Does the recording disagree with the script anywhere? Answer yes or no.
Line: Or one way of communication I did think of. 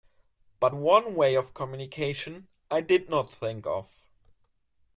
yes